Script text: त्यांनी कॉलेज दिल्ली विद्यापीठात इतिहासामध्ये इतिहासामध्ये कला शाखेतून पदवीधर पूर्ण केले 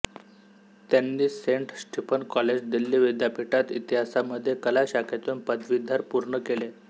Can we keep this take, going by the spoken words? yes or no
no